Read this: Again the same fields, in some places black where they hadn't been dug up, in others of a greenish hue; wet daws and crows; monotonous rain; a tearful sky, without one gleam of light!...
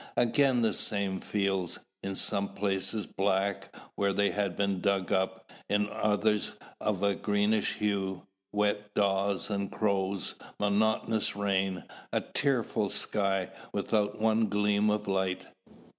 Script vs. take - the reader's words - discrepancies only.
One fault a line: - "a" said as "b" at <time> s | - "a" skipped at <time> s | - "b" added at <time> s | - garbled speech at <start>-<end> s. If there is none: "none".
- "hadn't" said as "had" at 4.3 s